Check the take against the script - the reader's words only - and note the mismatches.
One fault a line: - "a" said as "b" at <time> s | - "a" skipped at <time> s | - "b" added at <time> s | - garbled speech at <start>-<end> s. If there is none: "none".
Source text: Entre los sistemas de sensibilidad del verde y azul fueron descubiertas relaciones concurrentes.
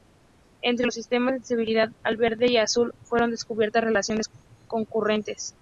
- "del" said as "al" at 2.0 s